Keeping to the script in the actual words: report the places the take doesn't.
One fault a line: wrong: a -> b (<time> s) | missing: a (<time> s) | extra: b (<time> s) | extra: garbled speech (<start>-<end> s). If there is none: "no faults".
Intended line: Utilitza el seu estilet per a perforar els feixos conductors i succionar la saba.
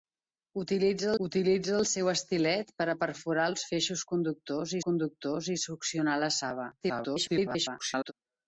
extra: utilitza (1.2 s)
extra: conductors (4.9 s)
extra: garbled speech (6.8-8.1 s)